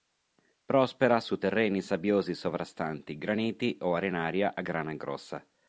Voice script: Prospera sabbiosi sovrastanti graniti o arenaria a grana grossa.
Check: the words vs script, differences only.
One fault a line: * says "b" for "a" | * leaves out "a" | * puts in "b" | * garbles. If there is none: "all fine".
* puts in "su terreni"